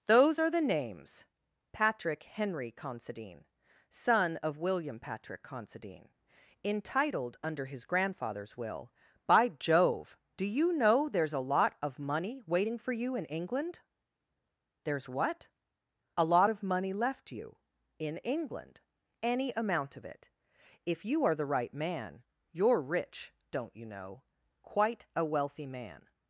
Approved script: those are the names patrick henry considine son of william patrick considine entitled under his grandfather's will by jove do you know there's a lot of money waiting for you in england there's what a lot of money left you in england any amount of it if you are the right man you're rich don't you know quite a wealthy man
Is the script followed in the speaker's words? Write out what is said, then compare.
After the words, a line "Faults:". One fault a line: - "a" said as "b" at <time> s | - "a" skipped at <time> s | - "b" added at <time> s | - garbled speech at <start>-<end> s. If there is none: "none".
those are the names patrick henry considine son of william patrick considine entitled under his grandfather's will by jove do you know there's a lot of money waiting for you in england there's what a lot of money left you in england any amount of it if you are the right man you're rich don't you know quite a wealthy man
Faults:
none